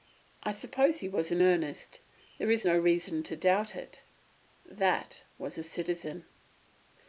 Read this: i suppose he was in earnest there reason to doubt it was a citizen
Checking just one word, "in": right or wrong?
right